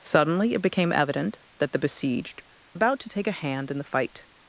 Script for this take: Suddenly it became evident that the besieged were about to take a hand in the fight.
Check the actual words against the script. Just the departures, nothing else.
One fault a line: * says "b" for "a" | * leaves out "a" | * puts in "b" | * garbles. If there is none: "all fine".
* leaves out "were"